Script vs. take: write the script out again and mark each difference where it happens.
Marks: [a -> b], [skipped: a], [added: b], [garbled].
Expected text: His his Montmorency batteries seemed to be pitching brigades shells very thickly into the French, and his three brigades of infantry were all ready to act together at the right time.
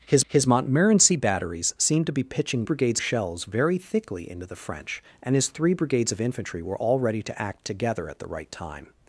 His his Montmorency batteries seemed to be pitching brigades shells very thickly into the French, and his three brigades of infantry were all ready to act together at the right time.